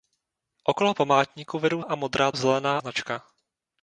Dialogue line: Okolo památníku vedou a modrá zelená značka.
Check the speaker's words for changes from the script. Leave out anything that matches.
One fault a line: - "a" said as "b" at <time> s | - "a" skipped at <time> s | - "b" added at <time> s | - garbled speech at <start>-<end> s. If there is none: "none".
none